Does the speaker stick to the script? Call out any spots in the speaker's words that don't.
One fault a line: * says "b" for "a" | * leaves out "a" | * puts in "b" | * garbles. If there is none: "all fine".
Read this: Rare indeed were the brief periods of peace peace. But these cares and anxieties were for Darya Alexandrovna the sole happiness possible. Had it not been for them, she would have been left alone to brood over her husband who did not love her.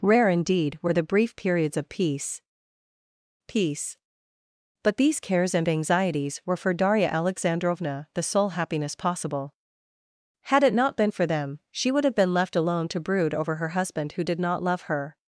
all fine